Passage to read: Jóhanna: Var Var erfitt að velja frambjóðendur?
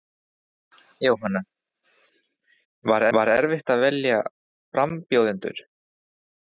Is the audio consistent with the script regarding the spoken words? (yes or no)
yes